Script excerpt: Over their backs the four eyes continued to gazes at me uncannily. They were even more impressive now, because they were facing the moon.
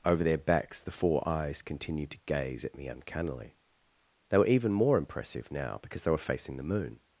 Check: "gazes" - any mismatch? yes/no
yes